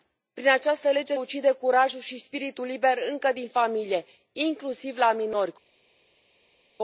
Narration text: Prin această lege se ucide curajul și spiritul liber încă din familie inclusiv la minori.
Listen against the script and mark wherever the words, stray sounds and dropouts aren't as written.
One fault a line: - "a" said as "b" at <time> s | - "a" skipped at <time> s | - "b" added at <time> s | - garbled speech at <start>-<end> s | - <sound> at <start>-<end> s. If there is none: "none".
- "se" skipped at 1.1 s